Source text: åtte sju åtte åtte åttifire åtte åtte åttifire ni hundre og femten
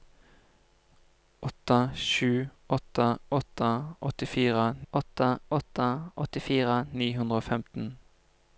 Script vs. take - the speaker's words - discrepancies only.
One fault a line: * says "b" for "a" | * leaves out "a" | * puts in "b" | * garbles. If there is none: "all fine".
all fine